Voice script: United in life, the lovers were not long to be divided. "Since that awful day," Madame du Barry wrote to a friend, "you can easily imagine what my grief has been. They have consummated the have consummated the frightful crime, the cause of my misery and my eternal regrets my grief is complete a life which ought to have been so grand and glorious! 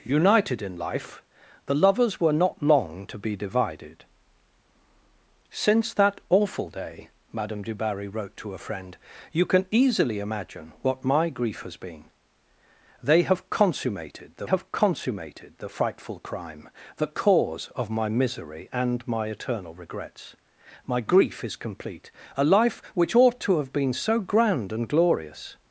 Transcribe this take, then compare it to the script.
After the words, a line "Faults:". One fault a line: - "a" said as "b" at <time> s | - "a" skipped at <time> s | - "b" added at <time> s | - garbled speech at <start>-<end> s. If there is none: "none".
United in life, the lovers were not long to be divided. "Since that awful day," Madame du Barry wrote to a friend, "you can easily imagine what my grief has been. They have consummated the have consummated the frightful crime, the cause of my misery and my eternal regrets my grief is complete a life which ought to have been so grand and glorious!
Faults:
none